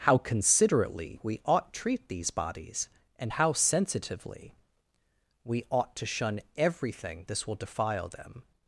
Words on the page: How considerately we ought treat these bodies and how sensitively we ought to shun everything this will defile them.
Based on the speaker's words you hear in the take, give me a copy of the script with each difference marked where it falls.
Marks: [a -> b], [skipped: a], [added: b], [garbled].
How considerately we ought treat these bodies and how sensitively we ought to shun everything this will defile them.